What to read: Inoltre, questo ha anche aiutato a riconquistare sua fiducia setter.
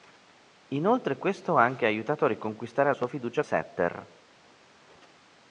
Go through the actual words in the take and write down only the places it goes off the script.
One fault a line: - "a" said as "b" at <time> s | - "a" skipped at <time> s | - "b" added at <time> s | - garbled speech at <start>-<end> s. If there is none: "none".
none